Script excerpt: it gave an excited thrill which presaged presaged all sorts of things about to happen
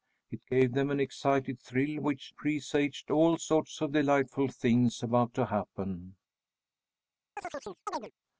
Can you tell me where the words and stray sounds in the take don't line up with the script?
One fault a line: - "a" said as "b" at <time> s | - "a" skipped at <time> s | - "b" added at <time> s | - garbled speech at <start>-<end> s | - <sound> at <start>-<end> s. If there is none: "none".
- "them" added at 0.7 s
- "presaged" skipped at 3.1 s
- "delightful" added at 3.9 s
- chirp at 7.4-8.1 s